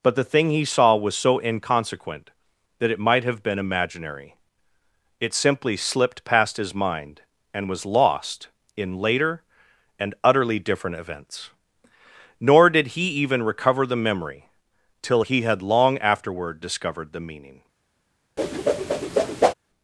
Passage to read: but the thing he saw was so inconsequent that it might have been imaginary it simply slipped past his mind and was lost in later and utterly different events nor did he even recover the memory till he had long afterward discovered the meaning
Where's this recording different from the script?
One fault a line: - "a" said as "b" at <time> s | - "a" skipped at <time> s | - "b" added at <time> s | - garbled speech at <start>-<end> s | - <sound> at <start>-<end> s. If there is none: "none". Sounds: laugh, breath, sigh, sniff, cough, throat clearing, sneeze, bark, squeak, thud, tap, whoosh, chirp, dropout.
- whoosh at 18.4-19.5 s